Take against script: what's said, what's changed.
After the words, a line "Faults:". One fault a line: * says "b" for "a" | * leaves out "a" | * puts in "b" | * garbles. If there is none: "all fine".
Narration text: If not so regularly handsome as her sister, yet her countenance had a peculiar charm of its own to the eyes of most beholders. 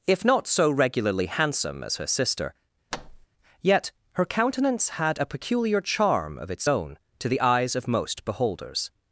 If not so regularly handsome as her sister, yet her countenance had a peculiar charm of its own to the eyes of most beholders.
Faults:
all fine